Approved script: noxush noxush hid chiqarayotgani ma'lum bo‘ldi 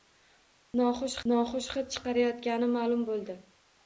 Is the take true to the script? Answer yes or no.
yes